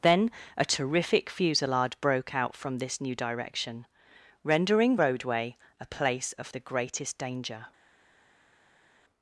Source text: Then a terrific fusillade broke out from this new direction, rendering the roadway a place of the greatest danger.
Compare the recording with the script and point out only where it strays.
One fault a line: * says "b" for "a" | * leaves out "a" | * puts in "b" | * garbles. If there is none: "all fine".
* leaves out "the"